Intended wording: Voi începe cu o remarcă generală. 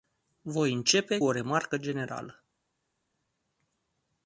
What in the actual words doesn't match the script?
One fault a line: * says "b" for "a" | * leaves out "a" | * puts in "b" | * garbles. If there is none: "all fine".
* leaves out "cu"